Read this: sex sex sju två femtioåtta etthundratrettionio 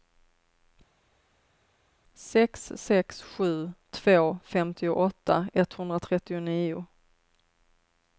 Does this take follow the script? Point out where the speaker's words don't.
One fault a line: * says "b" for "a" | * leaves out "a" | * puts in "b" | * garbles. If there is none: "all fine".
all fine